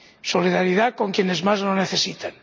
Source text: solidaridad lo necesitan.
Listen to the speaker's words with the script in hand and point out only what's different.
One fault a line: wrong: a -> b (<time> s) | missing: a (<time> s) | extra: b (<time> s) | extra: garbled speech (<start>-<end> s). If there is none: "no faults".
extra: con quienes más (0.9 s)